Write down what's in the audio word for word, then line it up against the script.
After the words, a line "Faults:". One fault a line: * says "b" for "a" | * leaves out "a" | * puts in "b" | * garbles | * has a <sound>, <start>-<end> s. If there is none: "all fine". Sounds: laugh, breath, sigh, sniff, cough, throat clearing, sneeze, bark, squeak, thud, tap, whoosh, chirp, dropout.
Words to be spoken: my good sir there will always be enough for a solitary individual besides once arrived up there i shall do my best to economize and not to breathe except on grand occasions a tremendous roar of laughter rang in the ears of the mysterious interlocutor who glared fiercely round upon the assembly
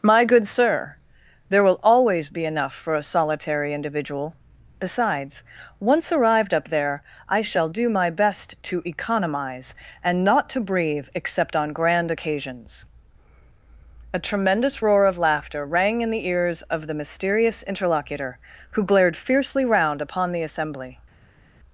my good sir there will always be enough for a solitary individual besides once arrived up there i shall do my best to economize and not to breathe except on grand occasions a tremendous roar of laughter rang in the ears of the mysterious interlocutor who glared fiercely round upon the assembly
Faults:
all fine